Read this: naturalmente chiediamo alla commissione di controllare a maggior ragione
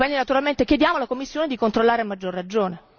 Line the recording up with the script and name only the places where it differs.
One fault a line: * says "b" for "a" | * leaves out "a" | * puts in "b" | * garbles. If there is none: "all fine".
all fine